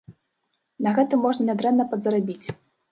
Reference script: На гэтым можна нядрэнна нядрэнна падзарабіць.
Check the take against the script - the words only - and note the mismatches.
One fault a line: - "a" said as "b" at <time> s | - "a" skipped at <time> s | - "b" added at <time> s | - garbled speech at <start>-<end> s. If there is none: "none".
- "нядрэнна" skipped at 1.9 s